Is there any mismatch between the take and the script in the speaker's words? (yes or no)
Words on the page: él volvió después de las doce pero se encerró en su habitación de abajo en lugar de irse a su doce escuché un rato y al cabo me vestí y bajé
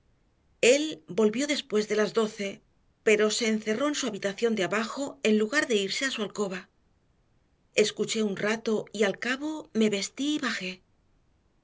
yes